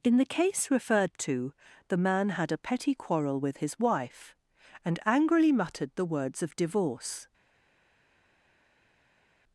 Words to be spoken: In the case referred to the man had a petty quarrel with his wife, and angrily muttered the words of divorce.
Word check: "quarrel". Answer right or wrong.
right